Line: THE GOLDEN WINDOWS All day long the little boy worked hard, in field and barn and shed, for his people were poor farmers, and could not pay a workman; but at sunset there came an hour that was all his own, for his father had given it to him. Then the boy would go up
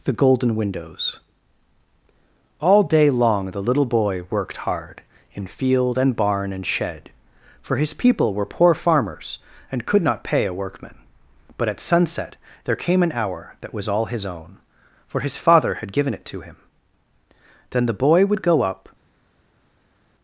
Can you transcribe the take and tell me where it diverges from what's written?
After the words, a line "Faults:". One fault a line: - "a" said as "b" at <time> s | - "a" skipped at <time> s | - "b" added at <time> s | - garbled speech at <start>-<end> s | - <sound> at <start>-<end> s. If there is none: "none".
THE GOLDEN WINDOWS All day long the little boy worked hard, in field and barn and shed, for his people were poor farmers, and could not pay a workman; but at sunset there came an hour that was all his own, for his father had given it to him. Then the boy would go up
Faults:
none